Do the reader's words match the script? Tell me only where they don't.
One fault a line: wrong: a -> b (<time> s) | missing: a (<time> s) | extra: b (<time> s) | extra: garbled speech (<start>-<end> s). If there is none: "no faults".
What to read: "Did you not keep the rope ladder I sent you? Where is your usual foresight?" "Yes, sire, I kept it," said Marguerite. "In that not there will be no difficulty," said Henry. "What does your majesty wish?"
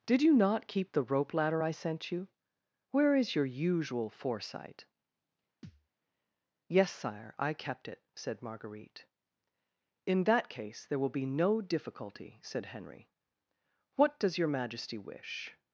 wrong: not -> case (10.5 s)